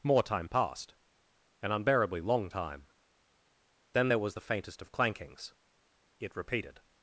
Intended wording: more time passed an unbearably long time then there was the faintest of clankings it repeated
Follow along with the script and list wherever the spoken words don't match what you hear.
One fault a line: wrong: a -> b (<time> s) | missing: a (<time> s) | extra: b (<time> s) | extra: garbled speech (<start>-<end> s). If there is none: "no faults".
no faults